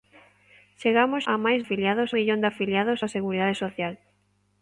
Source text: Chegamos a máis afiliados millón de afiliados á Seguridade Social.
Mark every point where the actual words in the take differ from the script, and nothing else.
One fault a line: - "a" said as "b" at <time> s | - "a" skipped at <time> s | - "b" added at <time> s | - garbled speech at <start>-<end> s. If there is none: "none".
none